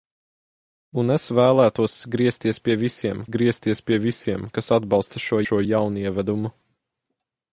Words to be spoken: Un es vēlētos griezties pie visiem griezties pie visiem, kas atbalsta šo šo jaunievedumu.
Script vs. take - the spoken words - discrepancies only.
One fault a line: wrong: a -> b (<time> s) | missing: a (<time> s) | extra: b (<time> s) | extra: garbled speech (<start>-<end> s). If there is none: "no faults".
no faults